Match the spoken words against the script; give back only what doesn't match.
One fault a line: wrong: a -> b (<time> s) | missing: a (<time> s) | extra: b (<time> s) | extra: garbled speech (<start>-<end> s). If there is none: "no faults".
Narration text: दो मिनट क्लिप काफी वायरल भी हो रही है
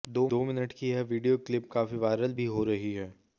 extra: की यह वीडियो (0.7 s)